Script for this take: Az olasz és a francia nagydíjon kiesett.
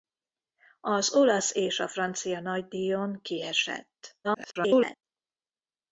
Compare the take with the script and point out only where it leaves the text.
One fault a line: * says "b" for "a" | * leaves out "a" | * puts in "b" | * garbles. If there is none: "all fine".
* garbles